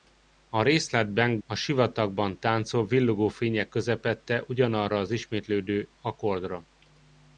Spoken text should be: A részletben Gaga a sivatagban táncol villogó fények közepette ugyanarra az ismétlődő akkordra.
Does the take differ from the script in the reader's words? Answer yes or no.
yes